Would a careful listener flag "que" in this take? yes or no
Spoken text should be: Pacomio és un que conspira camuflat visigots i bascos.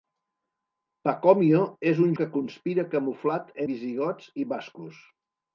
no